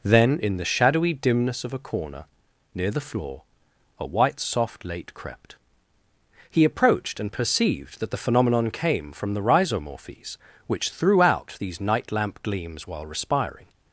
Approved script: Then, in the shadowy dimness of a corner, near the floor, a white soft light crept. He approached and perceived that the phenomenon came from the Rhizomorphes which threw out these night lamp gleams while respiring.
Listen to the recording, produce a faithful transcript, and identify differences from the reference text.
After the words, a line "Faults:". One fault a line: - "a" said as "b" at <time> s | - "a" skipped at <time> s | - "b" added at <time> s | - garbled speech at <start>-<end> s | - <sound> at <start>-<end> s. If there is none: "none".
Then, in the shadowy dimness of a corner, near the floor, a white soft late crept. He approached and perceived that the phenomenon came from the Rhizomorphes which threw out these night lamp gleams while respiring.
Faults:
- "light" said as "late" at 4.8 s